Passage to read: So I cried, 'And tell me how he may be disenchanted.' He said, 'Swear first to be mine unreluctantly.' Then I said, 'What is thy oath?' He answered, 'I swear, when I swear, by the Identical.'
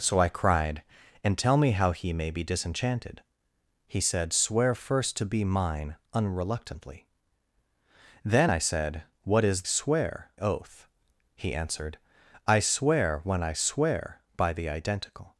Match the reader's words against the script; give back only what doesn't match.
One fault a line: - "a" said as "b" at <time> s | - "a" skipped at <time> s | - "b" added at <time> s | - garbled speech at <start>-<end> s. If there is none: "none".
- "thy" said as "swear" at 9.6 s